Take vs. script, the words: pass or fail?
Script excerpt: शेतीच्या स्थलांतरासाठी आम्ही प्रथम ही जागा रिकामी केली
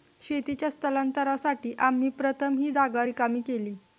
pass